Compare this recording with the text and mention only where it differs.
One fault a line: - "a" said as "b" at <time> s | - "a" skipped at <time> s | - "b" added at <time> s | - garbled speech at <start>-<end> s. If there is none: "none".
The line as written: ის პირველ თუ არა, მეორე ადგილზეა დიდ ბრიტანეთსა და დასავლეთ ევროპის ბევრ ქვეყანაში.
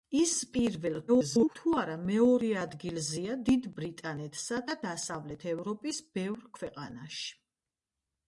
- garbled speech at 1.1-1.6 s